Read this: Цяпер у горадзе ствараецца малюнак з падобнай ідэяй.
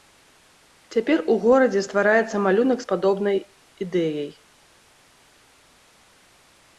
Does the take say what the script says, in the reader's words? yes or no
yes